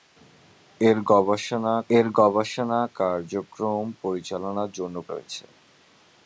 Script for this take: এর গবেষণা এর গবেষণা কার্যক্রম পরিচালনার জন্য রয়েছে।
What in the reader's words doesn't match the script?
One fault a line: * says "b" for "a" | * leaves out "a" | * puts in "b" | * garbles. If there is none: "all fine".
all fine